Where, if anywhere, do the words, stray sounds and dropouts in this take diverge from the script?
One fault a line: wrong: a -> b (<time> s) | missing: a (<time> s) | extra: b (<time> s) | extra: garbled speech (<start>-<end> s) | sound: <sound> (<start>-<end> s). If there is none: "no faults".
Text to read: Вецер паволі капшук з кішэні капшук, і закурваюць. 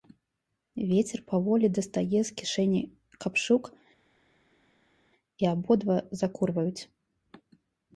wrong: капшук -> дастае (1.8 s)
extra: абодва (5.5 s)